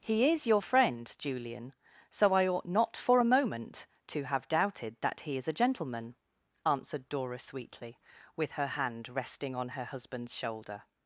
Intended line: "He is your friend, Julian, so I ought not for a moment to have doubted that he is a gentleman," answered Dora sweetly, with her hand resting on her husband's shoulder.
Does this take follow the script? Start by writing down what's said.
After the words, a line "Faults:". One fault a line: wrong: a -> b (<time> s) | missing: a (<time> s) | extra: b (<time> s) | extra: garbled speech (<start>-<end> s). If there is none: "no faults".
"He is your friend, Julian, so I ought not for a moment to have doubted that he is a gentleman," answered Dora sweetly, with her hand resting on her husband's shoulder.
Faults:
no faults